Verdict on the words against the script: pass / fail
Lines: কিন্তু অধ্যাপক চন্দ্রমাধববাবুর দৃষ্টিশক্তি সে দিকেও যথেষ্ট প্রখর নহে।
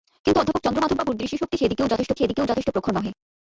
fail